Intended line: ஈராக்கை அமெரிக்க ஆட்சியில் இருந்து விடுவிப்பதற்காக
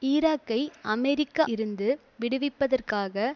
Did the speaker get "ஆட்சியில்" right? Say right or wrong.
wrong